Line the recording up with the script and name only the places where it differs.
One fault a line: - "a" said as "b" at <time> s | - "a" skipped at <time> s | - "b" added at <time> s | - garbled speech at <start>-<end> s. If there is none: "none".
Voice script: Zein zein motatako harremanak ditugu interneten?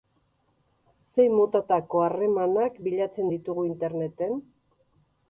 - "zein" skipped at 1.3 s
- "bilatzen" added at 2.9 s